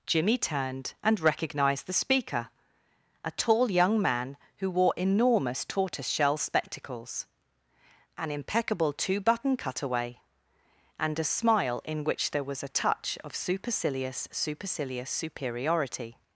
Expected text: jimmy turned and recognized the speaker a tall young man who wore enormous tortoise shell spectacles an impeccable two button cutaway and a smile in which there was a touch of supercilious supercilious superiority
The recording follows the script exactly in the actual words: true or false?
true